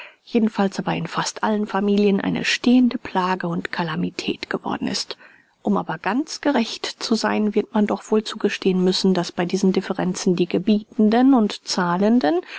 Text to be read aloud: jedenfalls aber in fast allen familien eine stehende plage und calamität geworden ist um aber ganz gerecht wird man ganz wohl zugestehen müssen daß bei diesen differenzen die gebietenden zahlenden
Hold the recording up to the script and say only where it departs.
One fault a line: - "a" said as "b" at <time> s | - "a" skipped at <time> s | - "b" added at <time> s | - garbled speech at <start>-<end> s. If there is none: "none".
- "zu sein" added at 6.9 s
- "ganz" said as "doch" at 7.8 s
- "und" added at 11.3 s